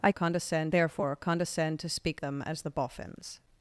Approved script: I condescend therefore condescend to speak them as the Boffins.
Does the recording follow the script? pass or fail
pass